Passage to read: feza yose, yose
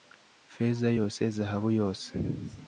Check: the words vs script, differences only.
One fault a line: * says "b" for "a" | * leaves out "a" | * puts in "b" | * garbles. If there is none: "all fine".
* puts in "zahabu"